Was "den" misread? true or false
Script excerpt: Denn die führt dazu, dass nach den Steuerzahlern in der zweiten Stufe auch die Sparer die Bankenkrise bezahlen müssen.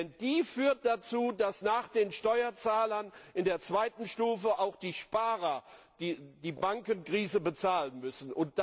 false